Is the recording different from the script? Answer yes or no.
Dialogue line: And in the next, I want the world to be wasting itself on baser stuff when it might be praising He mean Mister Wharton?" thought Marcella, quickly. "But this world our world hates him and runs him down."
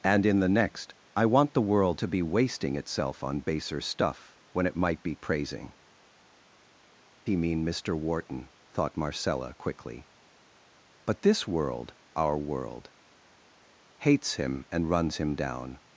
no